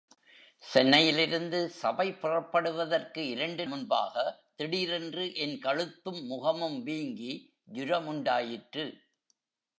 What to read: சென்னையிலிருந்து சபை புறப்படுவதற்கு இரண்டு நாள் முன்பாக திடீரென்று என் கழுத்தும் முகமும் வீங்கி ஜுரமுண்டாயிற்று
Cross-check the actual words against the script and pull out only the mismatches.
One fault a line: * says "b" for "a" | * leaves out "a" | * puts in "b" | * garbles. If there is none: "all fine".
* leaves out "நாள்"